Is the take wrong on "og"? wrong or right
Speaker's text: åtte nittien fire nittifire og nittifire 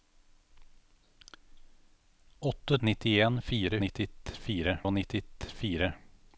right